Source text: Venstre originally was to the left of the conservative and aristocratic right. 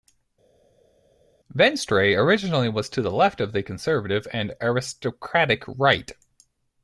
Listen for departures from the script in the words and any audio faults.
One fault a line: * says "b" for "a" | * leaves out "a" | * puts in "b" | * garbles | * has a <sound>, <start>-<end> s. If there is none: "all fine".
all fine